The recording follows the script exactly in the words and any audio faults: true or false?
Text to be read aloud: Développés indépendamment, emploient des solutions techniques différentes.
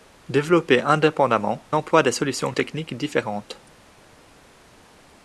true